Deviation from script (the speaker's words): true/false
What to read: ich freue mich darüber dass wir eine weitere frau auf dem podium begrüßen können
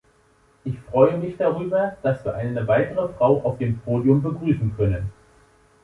false